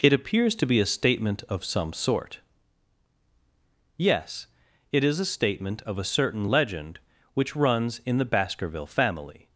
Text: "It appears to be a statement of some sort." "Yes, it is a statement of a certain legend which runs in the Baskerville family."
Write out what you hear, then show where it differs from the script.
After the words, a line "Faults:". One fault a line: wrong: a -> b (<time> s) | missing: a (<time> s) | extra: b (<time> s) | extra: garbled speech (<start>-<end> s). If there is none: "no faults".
"It appears to be a statement of some sort." "Yes, it is a statement of a certain legend which runs in the Baskerville family."
Faults:
no faults